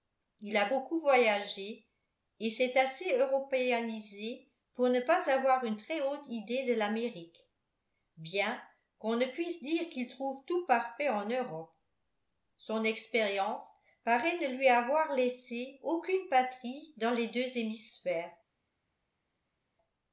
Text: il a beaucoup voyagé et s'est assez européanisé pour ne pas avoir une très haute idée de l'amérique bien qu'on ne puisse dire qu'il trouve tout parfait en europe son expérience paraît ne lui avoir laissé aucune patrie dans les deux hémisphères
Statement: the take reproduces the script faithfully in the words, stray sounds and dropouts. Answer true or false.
true